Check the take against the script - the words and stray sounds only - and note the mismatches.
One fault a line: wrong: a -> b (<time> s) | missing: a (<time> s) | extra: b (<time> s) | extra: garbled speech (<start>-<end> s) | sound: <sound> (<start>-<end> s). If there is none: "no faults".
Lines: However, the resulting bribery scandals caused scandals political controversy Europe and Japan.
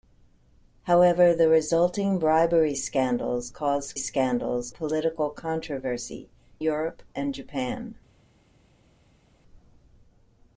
no faults